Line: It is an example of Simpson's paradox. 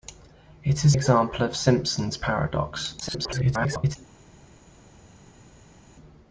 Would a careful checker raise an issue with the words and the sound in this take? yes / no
yes